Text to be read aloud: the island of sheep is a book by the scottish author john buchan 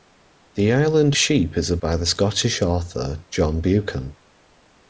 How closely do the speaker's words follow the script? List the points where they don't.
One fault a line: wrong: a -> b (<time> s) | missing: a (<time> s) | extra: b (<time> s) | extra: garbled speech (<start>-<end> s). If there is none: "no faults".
missing: of (1.1 s)
missing: book (1.8 s)